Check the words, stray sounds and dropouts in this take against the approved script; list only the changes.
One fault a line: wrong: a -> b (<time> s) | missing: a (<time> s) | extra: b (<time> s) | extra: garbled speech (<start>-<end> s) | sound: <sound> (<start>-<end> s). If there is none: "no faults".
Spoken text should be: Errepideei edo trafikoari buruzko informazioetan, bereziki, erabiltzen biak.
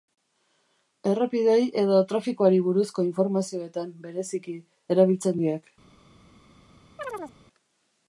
sound: chirp (7.0-7.4 s)